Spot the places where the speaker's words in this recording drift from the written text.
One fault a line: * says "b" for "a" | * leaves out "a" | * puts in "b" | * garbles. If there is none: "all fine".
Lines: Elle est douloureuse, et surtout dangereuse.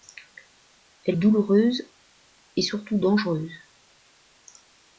* leaves out "est"